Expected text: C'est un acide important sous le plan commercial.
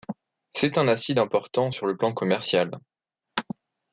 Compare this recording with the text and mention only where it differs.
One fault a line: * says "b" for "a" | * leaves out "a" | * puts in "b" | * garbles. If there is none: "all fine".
* says "sur" for "sous"